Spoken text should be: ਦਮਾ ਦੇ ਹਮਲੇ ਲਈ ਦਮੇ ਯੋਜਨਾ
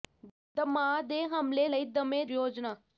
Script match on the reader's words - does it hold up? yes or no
yes